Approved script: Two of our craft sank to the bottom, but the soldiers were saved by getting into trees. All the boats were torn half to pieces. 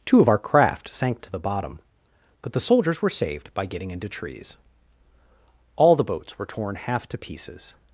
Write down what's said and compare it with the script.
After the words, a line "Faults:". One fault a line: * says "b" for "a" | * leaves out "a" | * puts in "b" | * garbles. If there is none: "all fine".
Two of our craft sank to the bottom, but the soldiers were saved by getting into trees. All the boats were torn half to pieces.
Faults:
all fine